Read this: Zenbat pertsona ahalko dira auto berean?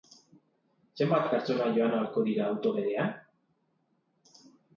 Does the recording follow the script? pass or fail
fail